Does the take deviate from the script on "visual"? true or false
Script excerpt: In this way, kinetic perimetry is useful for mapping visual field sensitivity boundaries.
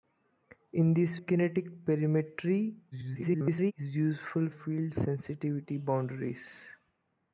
true